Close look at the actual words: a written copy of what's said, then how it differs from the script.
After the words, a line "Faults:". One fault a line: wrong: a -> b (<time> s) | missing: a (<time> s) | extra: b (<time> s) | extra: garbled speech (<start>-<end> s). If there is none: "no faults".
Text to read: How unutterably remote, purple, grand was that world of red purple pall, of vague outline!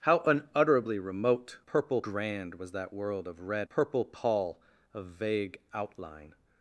How unutterably remote, purple, grand was that world of red purple pall, of vague outline!
Faults:
no faults